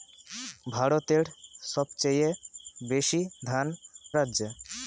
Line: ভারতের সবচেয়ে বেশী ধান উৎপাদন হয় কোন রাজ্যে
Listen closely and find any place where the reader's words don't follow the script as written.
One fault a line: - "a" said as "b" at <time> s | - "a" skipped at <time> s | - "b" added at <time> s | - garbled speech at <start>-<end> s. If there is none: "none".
- "উৎপাদন হয় কোন" skipped at 3.7 s